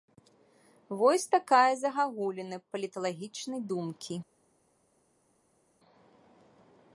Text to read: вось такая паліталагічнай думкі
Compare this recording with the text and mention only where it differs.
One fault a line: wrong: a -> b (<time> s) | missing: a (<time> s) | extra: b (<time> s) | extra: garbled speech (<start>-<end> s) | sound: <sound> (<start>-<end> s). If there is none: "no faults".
extra: загагуліна (1.8 s)